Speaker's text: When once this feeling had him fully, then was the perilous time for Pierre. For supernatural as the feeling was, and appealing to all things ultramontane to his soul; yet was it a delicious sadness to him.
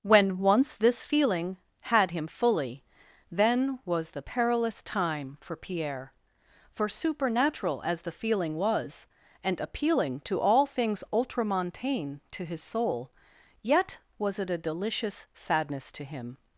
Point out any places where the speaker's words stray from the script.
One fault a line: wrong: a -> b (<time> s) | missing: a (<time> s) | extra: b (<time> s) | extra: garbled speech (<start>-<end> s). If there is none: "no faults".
no faults